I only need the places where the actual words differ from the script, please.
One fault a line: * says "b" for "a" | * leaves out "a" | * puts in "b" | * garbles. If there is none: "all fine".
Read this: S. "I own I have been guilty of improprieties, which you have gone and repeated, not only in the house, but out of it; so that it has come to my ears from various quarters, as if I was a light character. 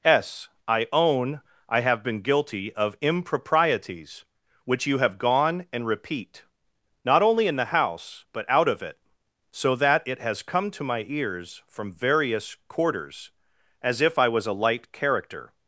* says "repeat" for "repeated"